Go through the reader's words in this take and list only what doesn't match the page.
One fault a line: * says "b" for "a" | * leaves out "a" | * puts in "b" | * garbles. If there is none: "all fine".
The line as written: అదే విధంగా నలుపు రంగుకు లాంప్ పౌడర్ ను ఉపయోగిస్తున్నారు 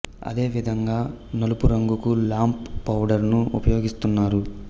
all fine